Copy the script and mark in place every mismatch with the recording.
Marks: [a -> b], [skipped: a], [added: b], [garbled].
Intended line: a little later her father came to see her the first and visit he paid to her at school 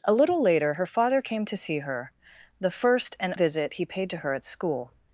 a little later her father came to see her the first and visit he paid to her at school